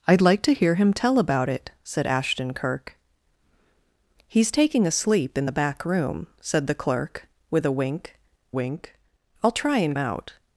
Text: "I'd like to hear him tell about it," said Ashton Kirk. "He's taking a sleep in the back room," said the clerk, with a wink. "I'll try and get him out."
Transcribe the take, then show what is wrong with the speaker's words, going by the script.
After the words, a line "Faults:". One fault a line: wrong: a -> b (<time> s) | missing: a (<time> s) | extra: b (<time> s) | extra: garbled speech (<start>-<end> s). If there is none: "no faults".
"I'd like to hear him tell about it," said Ashton Kirk. "He's taking a sleep in the back room," said the clerk, with a wink wink. "I'll try and out."
Faults:
extra: wink (8.5 s)
missing: get him (10.0 s)